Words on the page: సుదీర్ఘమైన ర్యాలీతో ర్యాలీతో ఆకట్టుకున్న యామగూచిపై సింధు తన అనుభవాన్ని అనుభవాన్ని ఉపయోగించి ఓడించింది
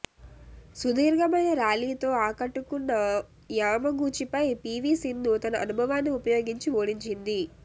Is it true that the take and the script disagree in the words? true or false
true